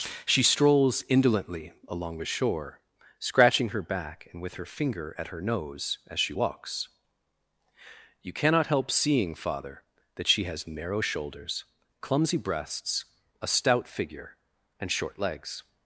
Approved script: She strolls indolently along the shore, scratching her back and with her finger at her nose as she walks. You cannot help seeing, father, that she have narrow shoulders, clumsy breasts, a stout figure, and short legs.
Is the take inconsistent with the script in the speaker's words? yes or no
yes